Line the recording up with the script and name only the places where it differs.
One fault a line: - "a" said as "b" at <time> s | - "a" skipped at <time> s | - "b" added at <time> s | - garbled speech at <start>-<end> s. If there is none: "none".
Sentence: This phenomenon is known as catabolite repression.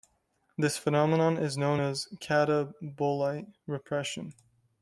none